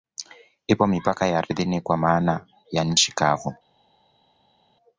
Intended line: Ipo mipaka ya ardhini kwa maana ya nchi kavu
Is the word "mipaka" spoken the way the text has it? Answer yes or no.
yes